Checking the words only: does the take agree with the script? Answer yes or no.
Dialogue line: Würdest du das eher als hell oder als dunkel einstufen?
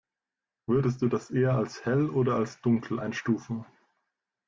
yes